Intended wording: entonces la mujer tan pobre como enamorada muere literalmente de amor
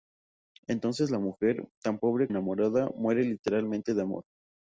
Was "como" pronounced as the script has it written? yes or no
no